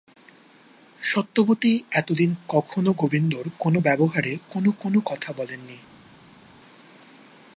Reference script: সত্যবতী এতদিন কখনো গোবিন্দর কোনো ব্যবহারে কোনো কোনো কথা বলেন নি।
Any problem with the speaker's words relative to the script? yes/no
no